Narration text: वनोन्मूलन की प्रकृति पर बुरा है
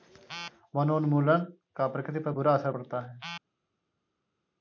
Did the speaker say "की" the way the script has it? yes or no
no